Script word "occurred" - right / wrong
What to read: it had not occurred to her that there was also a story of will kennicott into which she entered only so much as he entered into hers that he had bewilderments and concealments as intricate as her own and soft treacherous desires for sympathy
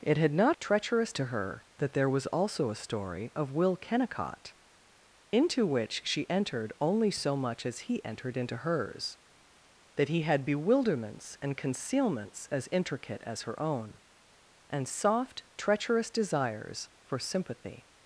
wrong